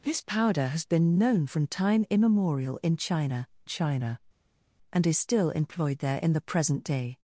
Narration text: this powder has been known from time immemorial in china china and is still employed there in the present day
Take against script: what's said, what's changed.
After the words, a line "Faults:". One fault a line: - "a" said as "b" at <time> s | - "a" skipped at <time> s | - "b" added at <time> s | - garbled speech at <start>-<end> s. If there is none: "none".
this powder has been known from time immemorial in china china and is still employed there in the present day
Faults:
none